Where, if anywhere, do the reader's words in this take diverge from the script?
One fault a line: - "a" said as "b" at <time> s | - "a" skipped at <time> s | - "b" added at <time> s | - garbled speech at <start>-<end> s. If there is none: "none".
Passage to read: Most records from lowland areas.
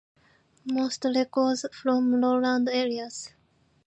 none